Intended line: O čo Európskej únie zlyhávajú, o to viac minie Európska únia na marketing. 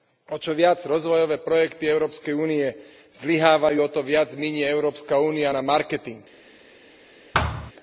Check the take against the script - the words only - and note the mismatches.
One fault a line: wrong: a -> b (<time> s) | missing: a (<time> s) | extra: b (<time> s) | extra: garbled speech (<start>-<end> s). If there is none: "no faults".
extra: viac rozvojové projekty (0.6 s)